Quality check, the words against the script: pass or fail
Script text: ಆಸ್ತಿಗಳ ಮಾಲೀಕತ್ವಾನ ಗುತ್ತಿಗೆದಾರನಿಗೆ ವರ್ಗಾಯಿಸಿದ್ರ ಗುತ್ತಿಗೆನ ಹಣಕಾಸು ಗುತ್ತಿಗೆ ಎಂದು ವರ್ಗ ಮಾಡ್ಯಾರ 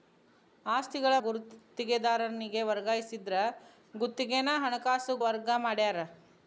fail